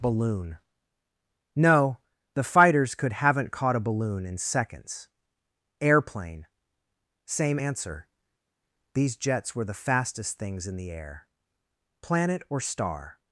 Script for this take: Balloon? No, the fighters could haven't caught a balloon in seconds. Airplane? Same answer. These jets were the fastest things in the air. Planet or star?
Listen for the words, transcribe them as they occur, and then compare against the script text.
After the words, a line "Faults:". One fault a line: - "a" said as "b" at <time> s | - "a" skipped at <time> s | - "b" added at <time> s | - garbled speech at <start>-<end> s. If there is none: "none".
Balloon? No, the fighters could haven't caught a balloon in seconds. Airplane? Same answer. These jets were the fastest things in the air. Planet or star?
Faults:
none